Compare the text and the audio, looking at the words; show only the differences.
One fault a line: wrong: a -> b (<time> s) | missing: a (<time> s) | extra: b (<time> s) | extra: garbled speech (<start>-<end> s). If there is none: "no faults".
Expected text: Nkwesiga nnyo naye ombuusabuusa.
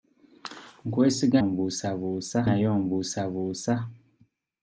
wrong: nnyo -> ombuusabuusa (1.4 s)